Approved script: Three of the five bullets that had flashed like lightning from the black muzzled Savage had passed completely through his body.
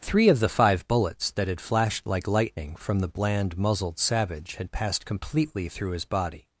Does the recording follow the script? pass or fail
fail